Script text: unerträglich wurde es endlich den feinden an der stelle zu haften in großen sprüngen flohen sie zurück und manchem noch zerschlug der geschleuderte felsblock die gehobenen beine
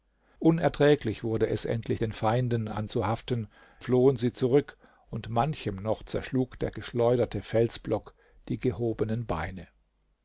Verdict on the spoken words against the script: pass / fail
fail